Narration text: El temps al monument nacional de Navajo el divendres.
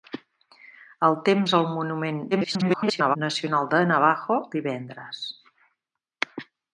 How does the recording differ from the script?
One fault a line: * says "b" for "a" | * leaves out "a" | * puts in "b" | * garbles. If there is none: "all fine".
* garbles
* leaves out "el"